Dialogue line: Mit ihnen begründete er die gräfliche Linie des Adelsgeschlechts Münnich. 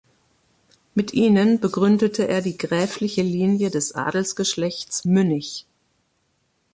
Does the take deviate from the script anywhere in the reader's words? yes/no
no